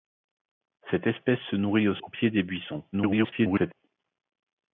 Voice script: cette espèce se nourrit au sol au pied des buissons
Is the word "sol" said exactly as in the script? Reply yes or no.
no